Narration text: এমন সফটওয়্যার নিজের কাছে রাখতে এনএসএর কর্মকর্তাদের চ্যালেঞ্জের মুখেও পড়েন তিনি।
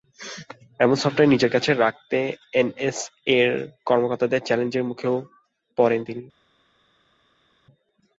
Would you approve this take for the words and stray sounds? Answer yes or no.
yes